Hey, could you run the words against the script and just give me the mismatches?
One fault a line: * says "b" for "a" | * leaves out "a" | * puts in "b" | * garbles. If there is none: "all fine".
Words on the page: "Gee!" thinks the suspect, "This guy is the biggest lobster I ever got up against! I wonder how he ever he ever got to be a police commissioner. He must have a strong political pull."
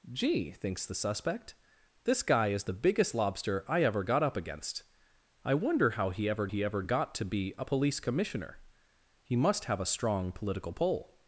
all fine